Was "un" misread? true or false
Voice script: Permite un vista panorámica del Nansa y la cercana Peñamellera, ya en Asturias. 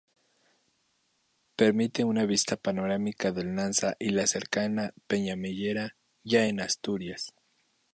true